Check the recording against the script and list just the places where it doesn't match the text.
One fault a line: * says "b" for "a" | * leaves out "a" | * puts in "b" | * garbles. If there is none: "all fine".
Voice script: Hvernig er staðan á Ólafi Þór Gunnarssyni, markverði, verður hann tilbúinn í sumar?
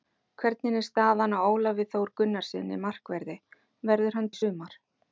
* leaves out "tilbúinn"